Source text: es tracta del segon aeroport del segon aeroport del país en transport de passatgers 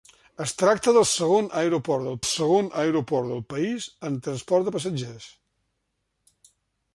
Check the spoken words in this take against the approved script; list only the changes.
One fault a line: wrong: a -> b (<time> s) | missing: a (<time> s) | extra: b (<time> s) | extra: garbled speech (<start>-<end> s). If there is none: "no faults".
no faults